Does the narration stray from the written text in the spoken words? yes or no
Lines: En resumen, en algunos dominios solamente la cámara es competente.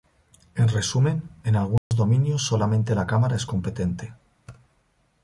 no